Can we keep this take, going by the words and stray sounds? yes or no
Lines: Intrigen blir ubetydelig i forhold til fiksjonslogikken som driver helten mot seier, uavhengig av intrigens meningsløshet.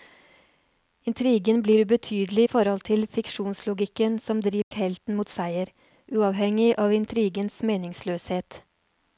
no